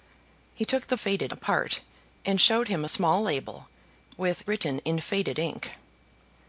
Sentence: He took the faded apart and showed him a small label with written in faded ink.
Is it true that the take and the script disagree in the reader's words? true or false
false